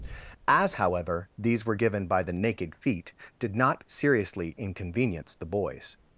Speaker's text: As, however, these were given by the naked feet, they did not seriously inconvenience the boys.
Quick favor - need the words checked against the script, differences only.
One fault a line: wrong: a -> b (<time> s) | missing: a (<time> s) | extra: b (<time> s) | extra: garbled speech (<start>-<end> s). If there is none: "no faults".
missing: they (3.1 s)